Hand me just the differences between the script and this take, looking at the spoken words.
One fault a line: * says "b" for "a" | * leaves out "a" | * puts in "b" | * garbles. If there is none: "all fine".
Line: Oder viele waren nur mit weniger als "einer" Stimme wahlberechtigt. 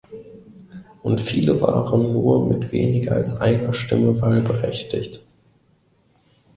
* says "Und" for "Oder"